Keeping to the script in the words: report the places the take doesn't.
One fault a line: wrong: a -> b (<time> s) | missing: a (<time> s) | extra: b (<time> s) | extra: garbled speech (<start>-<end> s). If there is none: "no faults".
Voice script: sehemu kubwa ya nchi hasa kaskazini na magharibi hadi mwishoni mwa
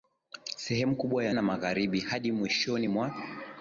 missing: nchi hasa kaskazini (1.4 s)